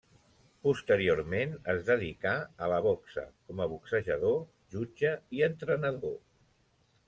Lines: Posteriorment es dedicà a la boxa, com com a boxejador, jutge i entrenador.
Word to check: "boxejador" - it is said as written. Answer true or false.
true